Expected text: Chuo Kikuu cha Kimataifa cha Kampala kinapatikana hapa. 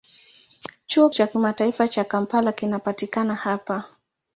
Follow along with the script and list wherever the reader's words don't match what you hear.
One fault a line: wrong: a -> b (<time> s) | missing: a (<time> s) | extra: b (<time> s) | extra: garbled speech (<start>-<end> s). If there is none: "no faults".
missing: Kikuu (1.1 s)